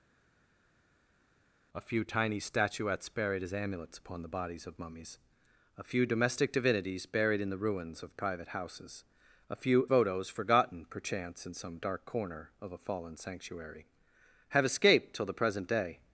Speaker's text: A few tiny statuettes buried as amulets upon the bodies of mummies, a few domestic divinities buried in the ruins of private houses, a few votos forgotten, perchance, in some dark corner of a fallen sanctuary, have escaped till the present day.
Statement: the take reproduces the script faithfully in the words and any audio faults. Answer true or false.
true